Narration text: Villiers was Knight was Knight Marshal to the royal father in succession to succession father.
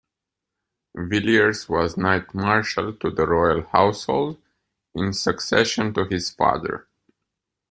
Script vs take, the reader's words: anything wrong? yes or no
yes